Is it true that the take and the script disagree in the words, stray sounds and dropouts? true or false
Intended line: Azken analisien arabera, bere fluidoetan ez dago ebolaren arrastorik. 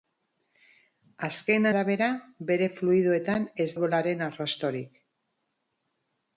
true